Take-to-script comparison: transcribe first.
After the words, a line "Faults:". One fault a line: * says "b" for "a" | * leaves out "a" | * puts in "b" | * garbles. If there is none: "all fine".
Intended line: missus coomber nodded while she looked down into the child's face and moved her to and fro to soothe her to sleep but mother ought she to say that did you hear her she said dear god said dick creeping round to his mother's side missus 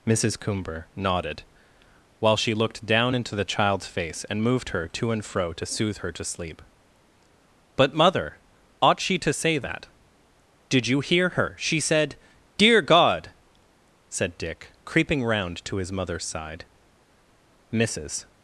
missus coomber nodded while she looked down into the child's face and moved her to and fro to soothe her to sleep but mother ought she to say that did you hear her she said dear god said dick creeping round to his mother's side missus
Faults:
all fine